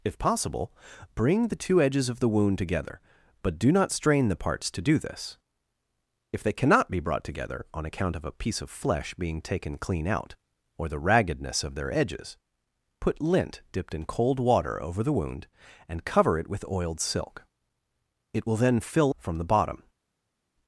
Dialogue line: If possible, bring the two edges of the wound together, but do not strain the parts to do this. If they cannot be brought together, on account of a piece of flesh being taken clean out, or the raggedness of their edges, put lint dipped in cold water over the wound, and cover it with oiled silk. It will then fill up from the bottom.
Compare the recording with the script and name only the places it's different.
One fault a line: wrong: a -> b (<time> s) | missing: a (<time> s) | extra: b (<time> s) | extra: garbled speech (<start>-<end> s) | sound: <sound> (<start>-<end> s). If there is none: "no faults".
missing: up (19.1 s)